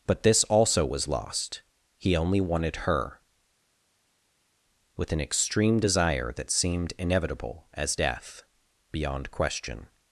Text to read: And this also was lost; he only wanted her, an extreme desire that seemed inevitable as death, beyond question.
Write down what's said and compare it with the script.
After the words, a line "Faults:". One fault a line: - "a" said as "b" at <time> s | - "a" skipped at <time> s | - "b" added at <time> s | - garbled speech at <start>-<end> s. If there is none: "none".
But this also was lost; he only wanted her, with an extreme desire that seemed inevitable as death, beyond question.
Faults:
- "And" said as "But" at 0.1 s
- "with" added at 5.0 s